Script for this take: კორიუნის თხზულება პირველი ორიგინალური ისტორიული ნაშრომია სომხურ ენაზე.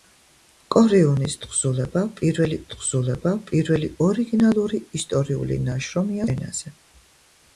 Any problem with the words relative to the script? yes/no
yes